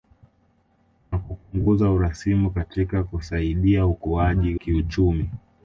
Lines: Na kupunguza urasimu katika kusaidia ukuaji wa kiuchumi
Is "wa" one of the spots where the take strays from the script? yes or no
yes